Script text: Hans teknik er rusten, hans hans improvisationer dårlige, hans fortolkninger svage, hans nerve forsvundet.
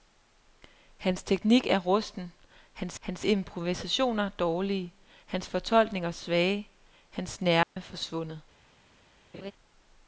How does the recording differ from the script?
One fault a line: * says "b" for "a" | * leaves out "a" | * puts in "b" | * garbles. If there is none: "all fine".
all fine